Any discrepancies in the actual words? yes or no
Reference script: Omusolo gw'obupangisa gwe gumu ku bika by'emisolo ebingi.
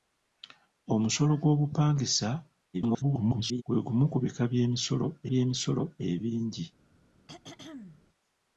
yes